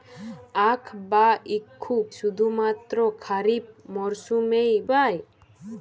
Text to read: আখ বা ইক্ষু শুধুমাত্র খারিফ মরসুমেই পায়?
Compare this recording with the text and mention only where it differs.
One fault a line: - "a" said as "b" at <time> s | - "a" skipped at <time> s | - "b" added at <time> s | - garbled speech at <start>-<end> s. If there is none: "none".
none